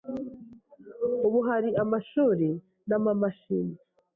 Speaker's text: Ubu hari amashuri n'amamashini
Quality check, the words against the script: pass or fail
pass